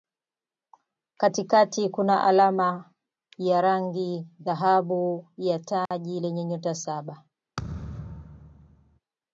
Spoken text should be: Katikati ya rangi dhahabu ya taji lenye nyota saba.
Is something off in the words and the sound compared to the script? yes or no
yes